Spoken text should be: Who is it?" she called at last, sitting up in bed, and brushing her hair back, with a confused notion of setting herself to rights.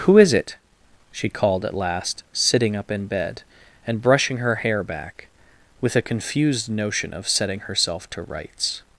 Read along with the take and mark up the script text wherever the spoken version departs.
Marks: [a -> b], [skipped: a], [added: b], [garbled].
Who is it?" she called at last, sitting up in bed, and brushing her hair back, with a confused notion of setting herself to rights.